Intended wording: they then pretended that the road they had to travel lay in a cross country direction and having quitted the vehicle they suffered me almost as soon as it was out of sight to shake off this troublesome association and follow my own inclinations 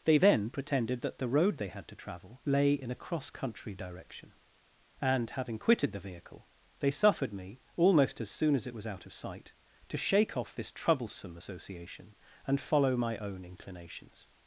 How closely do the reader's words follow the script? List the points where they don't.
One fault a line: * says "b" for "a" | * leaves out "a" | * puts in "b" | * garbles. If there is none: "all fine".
all fine